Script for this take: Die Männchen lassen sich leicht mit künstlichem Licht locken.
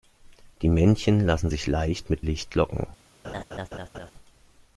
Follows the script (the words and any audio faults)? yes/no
no